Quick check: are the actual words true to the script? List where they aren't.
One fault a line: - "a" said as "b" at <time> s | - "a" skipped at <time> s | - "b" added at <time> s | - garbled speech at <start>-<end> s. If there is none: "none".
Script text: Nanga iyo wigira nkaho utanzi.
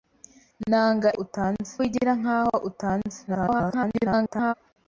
- "iyo" said as "utanzi" at 1.2 s
- garbled speech at 3.3-4.5 s